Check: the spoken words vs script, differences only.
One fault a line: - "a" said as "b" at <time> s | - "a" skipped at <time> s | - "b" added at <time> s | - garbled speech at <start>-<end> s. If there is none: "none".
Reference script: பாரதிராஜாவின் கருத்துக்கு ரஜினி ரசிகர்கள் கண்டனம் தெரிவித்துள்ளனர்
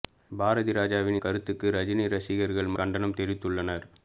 none